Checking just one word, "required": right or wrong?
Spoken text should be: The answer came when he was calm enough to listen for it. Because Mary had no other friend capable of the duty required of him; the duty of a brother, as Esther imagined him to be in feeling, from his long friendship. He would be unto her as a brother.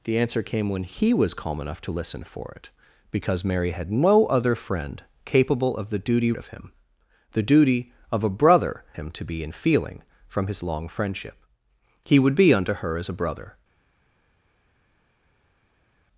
wrong